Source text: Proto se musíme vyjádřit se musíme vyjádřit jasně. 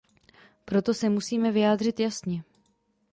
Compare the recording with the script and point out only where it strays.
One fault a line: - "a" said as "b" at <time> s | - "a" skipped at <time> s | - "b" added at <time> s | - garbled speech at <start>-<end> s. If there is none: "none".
- "se musíme vyjádřit" skipped at 2.0 s